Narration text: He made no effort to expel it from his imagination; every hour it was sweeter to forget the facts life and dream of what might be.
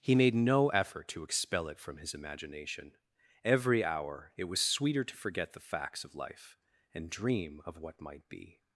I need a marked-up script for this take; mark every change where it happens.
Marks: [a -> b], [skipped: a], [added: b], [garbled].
He made no effort to expel it from his imagination; every hour it was sweeter to forget the facts [added: of] life and dream of what might be.